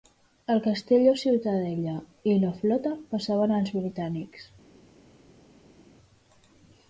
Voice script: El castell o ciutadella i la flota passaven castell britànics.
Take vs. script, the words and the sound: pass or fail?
fail